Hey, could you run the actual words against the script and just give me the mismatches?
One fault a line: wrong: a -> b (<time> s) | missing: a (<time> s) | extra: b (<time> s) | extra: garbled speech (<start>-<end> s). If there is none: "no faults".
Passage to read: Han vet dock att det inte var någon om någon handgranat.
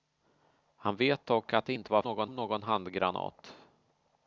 no faults